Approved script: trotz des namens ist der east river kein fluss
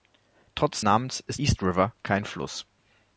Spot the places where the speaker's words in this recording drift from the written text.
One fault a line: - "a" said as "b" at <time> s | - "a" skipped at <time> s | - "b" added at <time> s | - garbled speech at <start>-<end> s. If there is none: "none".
- "des" skipped at 0.8 s
- "der" skipped at 1.4 s